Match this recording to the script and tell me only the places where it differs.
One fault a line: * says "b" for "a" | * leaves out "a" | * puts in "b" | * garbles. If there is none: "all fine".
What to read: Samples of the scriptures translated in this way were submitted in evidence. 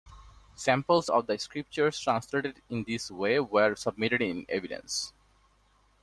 all fine